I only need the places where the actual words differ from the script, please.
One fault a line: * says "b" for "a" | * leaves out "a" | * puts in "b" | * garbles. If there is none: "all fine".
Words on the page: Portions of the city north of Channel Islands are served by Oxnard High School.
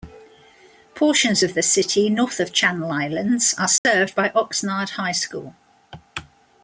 all fine